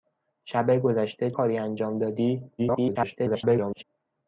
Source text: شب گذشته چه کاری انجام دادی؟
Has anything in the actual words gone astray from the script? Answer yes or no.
yes